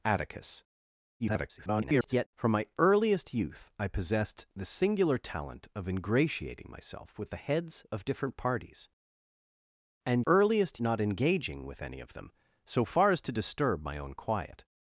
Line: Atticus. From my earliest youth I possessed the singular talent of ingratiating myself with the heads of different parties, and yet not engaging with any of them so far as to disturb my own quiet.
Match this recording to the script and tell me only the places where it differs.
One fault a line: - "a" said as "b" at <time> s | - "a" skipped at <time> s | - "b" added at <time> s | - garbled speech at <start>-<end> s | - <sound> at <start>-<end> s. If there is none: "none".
- garbled speech at 1.2-2.3 s
- "yet" said as "earliest" at 10.2 s